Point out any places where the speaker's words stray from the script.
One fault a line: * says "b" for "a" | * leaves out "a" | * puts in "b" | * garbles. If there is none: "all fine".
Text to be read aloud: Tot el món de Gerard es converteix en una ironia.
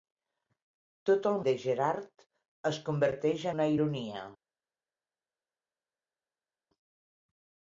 * leaves out "món"
* leaves out "en"